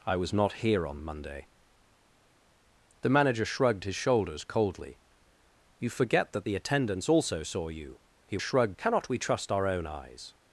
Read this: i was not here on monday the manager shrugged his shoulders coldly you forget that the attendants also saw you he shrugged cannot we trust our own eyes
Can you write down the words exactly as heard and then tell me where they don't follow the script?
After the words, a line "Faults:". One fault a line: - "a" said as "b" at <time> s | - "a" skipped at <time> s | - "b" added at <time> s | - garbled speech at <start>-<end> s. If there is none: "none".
i was not here on monday the manager shrugged his shoulders coldly you forget that the attendants also saw you he shrugged cannot we trust our own eyes
Faults:
none